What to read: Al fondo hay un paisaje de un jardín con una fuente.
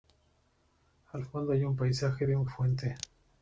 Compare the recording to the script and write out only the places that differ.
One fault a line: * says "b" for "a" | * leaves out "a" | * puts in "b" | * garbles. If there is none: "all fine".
* leaves out "jardín con una"